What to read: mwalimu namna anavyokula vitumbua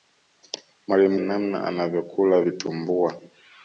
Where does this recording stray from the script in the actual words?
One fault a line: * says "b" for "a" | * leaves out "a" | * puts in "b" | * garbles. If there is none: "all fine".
all fine